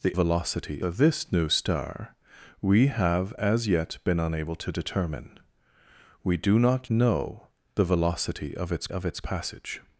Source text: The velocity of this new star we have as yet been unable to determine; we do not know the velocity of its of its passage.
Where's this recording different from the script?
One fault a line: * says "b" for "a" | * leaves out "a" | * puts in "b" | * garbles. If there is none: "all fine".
all fine